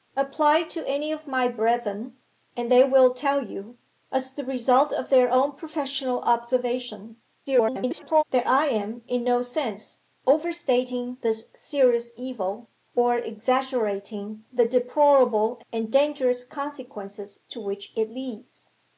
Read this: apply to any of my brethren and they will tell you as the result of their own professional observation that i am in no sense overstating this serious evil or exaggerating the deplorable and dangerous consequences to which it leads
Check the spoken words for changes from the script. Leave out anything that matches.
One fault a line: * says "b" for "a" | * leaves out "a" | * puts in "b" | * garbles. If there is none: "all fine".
* garbles